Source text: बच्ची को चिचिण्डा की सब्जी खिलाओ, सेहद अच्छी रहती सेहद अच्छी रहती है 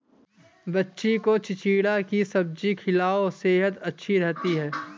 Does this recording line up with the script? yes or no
no